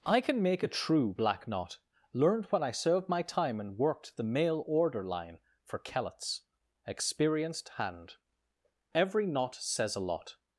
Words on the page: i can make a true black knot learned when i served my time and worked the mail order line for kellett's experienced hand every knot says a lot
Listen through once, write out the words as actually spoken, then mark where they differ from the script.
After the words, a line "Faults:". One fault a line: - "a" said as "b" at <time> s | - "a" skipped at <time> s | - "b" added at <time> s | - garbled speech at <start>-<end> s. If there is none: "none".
i can make a true black knot learned when i served my time and worked the mail order line for kellett's experienced hand every knot says a lot
Faults:
none